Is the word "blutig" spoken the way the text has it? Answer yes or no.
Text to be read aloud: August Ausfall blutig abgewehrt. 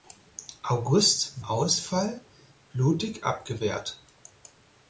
yes